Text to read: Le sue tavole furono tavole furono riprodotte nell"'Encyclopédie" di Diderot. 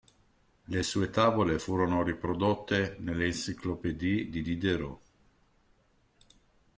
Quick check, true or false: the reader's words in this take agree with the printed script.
false